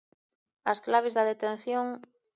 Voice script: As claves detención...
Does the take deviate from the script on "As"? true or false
false